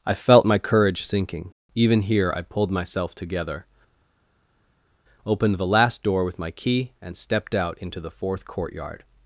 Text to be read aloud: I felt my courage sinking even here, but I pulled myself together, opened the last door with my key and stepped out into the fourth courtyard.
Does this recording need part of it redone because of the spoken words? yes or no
yes